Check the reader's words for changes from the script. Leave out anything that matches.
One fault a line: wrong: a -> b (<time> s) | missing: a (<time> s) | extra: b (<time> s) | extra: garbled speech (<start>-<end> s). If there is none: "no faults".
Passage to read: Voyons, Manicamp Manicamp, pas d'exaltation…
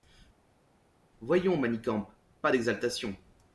missing: Manicamp (2.1 s)